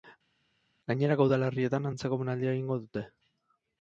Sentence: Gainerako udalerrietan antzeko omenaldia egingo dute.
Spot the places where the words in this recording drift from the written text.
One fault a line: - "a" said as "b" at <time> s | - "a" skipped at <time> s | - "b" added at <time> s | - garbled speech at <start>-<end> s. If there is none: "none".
none